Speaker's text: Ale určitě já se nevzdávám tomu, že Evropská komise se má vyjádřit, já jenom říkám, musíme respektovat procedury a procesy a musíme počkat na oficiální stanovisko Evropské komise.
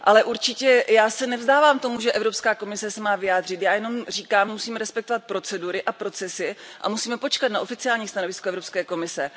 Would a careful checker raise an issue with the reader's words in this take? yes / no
no